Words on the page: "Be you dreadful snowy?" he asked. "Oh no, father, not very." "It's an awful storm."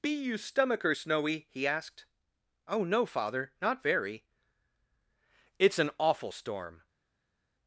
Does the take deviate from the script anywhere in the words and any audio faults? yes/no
yes